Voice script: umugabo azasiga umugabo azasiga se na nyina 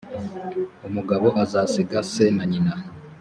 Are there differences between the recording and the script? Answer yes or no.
yes